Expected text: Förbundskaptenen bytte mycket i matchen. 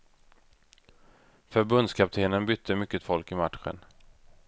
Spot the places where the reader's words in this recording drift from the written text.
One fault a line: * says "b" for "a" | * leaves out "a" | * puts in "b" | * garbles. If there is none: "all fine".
* puts in "folk"